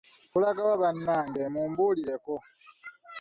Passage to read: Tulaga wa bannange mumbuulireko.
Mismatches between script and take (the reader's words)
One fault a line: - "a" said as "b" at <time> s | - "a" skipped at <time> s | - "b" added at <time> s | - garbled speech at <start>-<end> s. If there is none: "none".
none